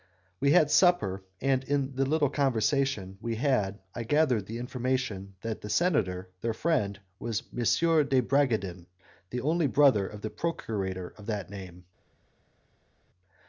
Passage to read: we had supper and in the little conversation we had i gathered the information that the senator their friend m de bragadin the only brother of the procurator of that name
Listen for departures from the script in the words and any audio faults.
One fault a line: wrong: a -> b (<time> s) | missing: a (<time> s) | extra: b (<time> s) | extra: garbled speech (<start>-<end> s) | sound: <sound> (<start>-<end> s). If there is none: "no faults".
extra: was (7.2 s)